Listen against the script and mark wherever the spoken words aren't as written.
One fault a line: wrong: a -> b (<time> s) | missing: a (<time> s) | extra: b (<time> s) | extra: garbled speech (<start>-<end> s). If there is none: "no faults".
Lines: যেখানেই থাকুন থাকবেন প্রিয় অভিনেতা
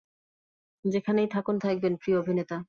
no faults